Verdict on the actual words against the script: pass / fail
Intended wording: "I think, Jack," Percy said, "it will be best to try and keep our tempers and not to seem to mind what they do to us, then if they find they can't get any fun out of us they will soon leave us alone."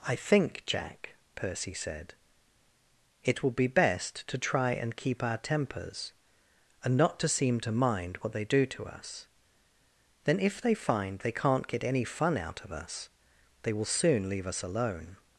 pass